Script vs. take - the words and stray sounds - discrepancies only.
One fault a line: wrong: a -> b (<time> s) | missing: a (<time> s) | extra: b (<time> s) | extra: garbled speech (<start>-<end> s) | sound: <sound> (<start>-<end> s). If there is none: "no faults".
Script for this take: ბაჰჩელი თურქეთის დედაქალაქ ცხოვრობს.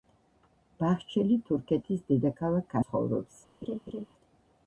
sound: laugh (3.6-4.1 s)